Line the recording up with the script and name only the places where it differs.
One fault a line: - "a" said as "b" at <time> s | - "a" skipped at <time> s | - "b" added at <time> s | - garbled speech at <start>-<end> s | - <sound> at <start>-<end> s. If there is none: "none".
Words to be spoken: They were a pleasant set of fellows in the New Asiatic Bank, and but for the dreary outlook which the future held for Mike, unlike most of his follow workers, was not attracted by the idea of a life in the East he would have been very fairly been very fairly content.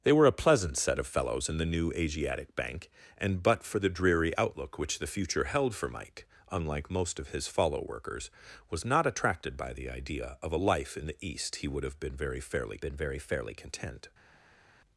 none